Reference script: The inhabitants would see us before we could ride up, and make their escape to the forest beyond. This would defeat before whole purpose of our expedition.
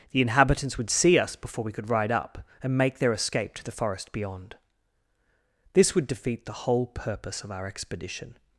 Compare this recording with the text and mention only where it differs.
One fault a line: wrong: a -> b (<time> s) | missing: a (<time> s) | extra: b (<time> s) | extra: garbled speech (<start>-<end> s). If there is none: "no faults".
wrong: before -> the (6.5 s)